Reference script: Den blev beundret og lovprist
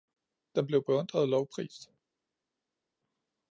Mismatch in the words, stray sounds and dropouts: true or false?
false